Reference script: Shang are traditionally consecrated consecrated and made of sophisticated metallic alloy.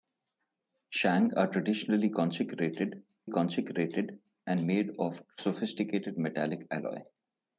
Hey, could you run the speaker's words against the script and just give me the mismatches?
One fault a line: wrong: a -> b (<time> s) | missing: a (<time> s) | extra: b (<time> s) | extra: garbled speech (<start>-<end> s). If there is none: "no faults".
no faults